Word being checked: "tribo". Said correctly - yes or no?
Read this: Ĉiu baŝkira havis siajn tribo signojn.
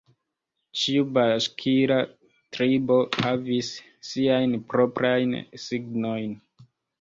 no